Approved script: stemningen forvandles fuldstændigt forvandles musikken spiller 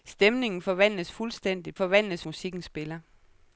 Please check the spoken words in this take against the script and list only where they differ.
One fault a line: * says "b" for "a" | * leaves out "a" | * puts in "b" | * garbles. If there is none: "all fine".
all fine